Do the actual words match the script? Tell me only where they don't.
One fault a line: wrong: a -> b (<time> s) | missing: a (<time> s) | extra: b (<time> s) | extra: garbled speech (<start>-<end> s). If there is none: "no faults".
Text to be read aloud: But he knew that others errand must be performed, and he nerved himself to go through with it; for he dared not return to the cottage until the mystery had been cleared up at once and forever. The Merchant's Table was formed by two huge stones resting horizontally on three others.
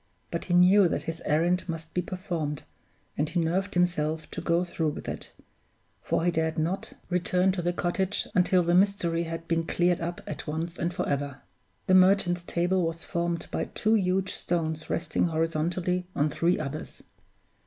wrong: others -> his (1.0 s)